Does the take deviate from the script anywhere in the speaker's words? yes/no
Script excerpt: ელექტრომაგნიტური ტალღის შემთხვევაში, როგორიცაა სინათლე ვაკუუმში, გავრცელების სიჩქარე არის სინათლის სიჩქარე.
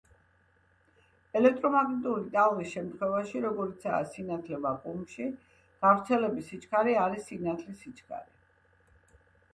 no